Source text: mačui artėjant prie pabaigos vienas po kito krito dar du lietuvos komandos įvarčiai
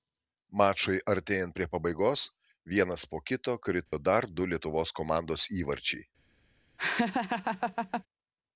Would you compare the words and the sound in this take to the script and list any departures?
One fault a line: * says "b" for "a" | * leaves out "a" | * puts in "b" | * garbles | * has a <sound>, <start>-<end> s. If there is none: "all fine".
* has a dropout, 3.9-3.9 s
* has a laugh, 6.8-8.0 s